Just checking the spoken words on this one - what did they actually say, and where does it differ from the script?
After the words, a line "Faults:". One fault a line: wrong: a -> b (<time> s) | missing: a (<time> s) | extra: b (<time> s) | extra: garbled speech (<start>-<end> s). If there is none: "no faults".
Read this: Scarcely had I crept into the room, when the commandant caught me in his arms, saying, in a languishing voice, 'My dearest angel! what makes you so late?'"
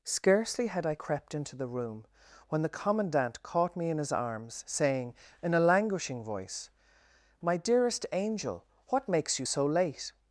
Scarcely had I crept into the room, when the commandant caught me in his arms, saying, in a languishing voice, 'My dearest angel! what makes you so late?'"
Faults:
no faults